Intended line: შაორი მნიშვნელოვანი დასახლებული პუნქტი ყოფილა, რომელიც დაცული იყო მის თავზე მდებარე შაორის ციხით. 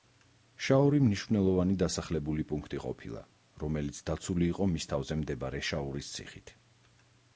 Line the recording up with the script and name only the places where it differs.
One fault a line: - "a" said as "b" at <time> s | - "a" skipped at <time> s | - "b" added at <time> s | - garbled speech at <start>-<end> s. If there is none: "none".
none